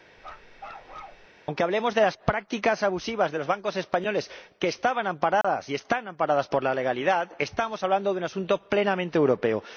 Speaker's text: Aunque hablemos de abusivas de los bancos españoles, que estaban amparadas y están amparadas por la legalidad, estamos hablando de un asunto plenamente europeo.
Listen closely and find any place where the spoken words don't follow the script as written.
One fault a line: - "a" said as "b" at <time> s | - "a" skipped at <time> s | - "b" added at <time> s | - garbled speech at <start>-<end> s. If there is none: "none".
- "las prácticas" added at 2.0 s